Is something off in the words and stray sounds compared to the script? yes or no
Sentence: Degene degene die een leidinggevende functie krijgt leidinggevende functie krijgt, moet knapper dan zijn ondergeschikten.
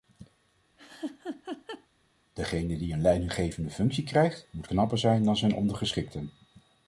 yes